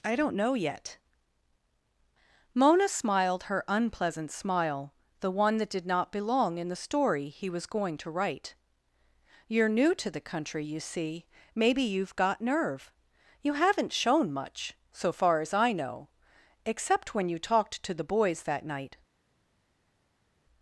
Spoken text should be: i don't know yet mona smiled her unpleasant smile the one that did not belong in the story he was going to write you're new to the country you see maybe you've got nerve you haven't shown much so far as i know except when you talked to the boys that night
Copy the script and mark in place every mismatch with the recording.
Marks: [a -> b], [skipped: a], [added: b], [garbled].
i don't know yet mona smiled her unpleasant smile the one that did not belong in the story he was going to write you're new to the country you see maybe you've got nerve you haven't shown much so far as i know except when you talked to the boys that night